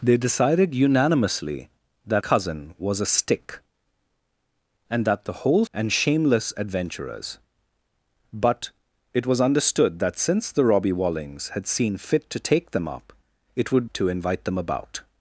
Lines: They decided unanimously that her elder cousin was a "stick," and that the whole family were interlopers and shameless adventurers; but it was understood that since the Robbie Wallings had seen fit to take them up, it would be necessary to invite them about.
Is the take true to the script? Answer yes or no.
no